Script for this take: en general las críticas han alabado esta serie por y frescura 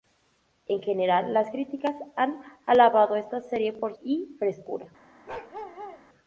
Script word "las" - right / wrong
right